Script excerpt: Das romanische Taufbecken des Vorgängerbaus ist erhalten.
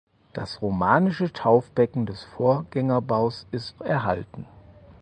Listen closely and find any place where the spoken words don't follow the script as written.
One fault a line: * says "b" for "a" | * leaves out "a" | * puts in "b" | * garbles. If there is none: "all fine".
all fine